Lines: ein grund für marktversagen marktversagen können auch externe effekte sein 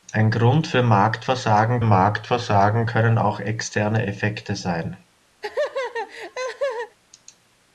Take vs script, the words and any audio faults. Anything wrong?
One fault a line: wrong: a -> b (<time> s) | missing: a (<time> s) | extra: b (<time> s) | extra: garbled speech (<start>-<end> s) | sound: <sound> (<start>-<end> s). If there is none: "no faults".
sound: laugh (5.4-7.0 s)